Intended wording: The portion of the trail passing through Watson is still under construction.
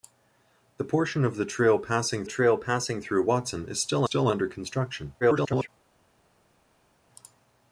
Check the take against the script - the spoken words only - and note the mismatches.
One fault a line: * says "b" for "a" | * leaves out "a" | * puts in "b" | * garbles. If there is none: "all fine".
* puts in "trail passing"
* puts in "still"
* garbles